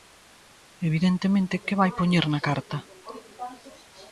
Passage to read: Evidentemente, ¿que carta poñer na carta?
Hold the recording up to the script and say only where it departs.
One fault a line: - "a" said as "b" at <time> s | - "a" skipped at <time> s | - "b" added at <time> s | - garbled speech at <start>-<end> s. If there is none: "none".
- "carta" said as "vai" at 1.8 s